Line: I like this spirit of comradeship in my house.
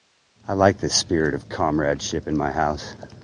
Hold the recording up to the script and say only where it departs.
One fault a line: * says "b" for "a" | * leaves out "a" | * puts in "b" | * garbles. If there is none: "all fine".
all fine